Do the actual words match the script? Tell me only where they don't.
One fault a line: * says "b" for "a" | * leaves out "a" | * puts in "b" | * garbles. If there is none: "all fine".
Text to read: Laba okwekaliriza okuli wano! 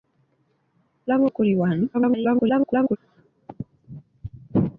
* leaves out "okwekaliriza"
* garbles